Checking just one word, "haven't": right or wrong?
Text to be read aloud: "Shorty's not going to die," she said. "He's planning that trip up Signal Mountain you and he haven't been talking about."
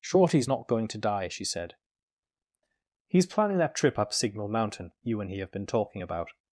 wrong